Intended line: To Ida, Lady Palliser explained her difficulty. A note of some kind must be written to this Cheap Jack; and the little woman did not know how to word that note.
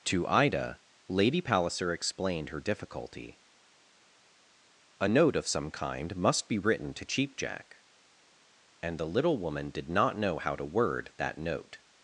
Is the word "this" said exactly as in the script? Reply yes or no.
no